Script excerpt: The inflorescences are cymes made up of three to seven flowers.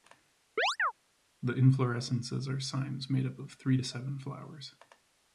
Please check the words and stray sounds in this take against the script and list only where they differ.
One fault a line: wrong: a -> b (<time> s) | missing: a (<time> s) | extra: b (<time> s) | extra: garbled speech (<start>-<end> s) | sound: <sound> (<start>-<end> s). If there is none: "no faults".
sound: chirp (0.6-0.9 s)